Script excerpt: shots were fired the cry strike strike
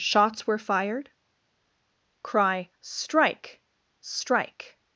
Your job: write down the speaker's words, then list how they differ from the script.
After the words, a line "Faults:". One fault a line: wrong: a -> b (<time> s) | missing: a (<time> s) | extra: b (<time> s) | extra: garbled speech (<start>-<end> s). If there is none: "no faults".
shots were fired cry strike strike
Faults:
missing: the (1.1 s)